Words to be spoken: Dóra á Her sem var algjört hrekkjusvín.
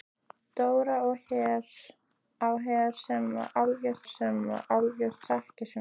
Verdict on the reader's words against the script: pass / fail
fail